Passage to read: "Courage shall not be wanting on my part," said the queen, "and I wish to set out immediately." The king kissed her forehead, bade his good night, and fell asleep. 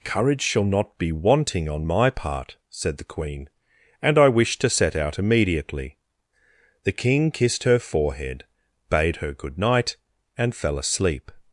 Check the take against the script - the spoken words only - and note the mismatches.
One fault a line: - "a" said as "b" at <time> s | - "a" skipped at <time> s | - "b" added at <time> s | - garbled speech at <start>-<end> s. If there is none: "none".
- "his" said as "her" at 9.2 s